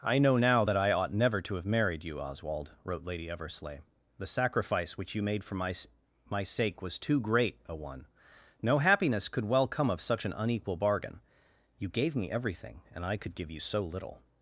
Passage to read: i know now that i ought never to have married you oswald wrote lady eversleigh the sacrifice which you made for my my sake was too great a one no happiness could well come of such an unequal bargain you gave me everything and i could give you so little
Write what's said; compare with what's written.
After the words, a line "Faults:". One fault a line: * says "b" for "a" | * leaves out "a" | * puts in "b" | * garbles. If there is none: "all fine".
i know now that i ought never to have married you oswald wrote lady eversleigh the sacrifice which you made for my my sake was too great a one no happiness could well come of such an unequal bargain you gave me everything and i could give you so little
Faults:
all fine